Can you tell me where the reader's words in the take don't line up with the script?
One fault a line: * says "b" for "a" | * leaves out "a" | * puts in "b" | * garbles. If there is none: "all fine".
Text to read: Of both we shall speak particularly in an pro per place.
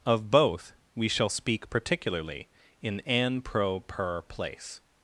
all fine